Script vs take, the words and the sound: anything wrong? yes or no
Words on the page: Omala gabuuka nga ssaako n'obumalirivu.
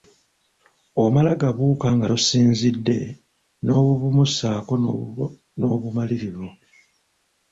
yes